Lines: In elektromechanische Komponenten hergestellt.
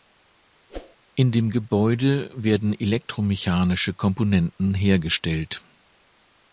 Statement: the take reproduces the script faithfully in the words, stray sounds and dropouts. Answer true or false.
false